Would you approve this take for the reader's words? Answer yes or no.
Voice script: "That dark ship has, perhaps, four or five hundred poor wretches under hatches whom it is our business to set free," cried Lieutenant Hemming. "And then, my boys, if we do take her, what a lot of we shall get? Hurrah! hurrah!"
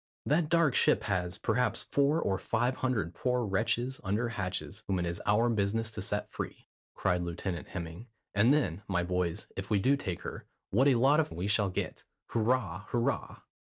yes